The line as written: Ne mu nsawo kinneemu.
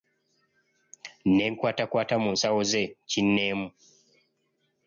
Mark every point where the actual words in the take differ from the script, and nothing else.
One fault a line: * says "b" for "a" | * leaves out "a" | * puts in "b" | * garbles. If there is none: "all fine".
* puts in "nkwatakwata"
* puts in "ze"